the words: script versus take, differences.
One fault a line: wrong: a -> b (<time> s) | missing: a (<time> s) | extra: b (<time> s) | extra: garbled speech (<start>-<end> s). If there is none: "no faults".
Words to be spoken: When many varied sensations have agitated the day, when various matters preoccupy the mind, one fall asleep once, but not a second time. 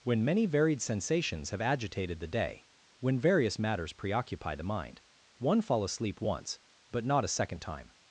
no faults